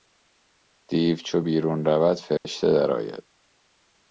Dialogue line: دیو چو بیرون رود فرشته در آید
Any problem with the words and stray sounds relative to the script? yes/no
yes